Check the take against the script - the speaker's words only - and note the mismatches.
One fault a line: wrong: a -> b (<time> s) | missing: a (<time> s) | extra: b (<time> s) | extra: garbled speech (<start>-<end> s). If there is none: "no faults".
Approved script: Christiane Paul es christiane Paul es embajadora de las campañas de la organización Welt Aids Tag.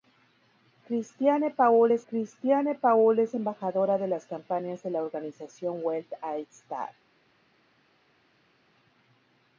no faults